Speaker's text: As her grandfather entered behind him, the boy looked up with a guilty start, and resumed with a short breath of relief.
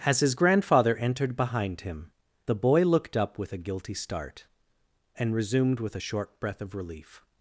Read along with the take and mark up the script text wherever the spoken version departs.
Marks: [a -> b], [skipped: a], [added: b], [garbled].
As [her -> his] grandfather entered behind him, the boy looked up with a guilty start, and resumed with a short breath of relief.